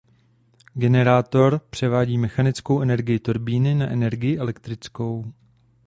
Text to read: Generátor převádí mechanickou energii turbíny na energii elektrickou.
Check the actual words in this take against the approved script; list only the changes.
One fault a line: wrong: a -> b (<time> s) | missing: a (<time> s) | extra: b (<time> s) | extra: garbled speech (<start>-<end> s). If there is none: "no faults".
no faults